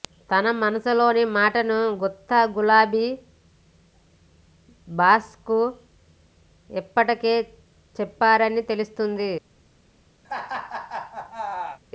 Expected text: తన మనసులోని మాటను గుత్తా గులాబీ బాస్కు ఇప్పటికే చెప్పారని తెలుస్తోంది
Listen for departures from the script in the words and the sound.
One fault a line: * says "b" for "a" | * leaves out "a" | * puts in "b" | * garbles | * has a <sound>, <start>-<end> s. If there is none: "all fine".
* has a laugh, 10.2-11.8 s